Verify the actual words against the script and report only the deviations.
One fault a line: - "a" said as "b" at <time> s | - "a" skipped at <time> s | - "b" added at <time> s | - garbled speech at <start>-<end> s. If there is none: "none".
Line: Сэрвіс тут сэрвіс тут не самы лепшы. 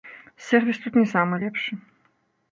- "сэрвіс тут" skipped at 1.0 s